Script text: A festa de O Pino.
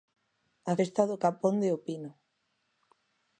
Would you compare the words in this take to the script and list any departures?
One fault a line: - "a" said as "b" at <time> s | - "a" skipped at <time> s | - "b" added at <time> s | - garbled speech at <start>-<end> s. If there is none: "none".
- "do capón" added at 1.1 s